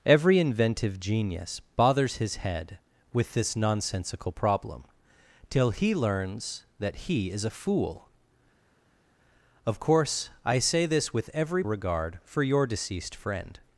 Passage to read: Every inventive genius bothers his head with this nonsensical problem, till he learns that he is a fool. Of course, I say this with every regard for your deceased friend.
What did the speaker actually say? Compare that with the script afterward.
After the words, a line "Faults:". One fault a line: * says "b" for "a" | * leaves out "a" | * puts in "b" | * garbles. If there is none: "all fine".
Every inventive genius bothers his head with this nonsensical problem, till he learns that he is a fool. Of course, I say this with every regard for your deceased friend.
Faults:
all fine